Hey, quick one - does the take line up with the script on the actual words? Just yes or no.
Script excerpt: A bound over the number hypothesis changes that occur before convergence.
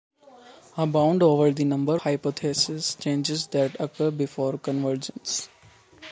yes